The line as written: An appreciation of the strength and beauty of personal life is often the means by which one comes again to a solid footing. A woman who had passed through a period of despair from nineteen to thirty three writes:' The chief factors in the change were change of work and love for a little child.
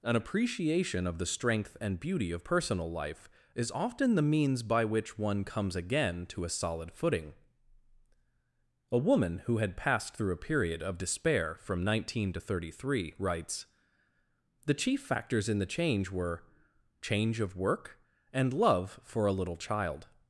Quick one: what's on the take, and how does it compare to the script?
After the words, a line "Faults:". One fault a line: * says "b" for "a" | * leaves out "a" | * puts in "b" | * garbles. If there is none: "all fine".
An appreciation of the strength and beauty of personal life is often the means by which one comes again to a solid footing. A woman who had passed through a period of despair from nineteen to thirty three writes:' The chief factors in the change were change of work and love for a little child.
Faults:
all fine